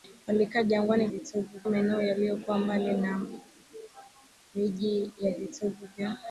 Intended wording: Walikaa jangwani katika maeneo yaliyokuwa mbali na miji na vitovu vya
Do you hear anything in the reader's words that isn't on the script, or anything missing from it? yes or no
yes